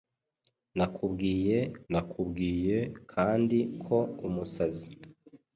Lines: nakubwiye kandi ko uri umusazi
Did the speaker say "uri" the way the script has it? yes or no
no